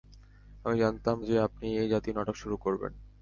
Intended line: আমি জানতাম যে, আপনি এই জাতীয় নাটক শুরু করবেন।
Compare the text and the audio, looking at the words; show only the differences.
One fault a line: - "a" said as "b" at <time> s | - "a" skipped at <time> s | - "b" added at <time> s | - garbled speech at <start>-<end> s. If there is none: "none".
none